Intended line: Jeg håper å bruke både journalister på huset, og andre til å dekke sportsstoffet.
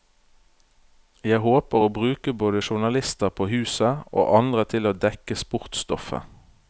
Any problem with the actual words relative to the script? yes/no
no